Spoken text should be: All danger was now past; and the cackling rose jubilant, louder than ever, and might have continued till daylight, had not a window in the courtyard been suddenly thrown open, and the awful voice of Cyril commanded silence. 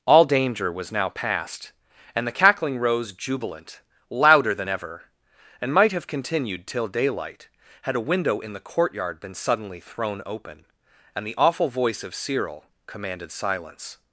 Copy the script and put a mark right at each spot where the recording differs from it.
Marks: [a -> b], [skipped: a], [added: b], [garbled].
All danger was now past; and the cackling rose jubilant, louder than ever, and might have continued till daylight, had [skipped: not] a window in the courtyard been suddenly thrown open, and the awful voice of Cyril commanded silence.